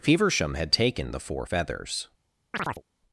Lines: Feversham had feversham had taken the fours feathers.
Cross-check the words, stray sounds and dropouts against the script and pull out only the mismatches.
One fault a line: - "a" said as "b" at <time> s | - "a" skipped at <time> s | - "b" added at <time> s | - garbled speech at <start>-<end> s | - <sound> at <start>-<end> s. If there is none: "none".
- "feversham had" skipped at 0.7 s
- "fours" said as "four" at 1.2 s
- chirp at 2.5-2.8 s